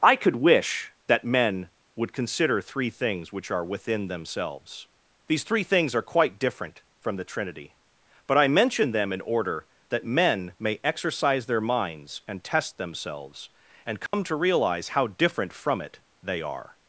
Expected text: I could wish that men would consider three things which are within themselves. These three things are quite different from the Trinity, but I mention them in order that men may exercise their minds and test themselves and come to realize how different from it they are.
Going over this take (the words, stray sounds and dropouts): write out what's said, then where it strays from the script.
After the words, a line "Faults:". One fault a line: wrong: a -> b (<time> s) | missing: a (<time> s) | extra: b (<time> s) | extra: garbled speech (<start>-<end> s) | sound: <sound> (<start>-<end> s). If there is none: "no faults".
I could wish that men would consider three things which are within themselves. These three things are quite different from the Trinity, but I mention them in order that men may exercise their minds and test themselves and come to realize how different from it they are.
Faults:
sound: dropout (14.1-14.1 s)